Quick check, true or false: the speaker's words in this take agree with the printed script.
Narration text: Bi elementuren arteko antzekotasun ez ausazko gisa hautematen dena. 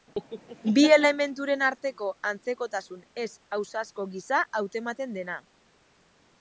true